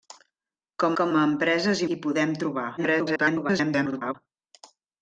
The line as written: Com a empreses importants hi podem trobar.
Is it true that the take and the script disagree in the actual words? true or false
true